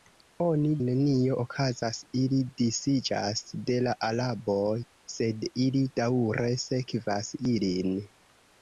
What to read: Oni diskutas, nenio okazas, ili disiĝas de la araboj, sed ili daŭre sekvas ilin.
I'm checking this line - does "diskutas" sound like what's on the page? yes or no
no